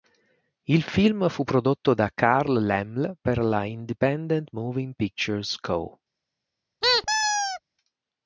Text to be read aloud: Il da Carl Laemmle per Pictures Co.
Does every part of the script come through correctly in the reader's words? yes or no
no